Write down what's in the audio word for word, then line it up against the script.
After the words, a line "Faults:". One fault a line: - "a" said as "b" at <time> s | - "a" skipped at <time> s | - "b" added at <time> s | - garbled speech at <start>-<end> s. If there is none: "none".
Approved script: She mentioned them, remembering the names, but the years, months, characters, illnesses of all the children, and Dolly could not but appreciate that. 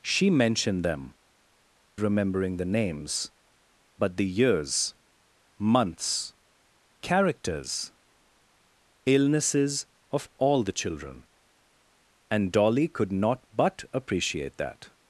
She mentioned them, remembering the names, but the years, months, characters, illnesses of all the children, and Dolly could not but appreciate that.
Faults:
none